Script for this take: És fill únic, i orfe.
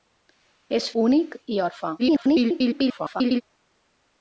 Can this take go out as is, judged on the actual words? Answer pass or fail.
fail